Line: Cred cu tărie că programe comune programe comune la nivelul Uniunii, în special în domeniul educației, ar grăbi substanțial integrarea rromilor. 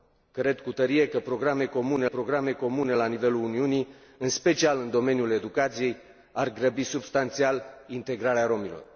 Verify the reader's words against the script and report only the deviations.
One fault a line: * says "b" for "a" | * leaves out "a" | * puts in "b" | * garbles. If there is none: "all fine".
all fine